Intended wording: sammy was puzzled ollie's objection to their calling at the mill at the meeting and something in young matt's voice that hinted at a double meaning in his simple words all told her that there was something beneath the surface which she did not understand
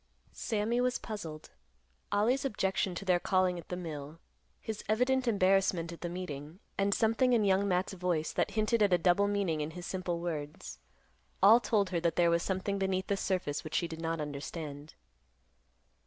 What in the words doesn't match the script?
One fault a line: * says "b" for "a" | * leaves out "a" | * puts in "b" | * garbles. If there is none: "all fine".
* puts in "his evident embarrassment"